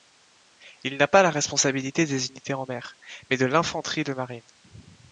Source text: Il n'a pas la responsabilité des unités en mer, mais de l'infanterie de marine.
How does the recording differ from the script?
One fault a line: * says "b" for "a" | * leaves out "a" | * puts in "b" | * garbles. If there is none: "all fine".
all fine